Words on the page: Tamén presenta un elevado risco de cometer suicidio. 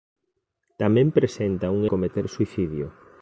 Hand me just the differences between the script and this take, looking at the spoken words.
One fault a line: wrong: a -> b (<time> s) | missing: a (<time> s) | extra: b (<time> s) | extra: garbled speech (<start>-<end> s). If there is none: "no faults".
missing: elevado risco de (1.8 s)